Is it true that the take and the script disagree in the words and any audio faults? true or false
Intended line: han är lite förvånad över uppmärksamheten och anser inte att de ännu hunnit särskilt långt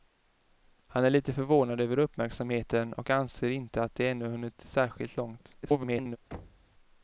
true